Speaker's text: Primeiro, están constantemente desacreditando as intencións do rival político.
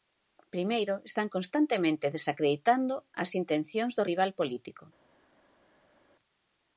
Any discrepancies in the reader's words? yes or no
no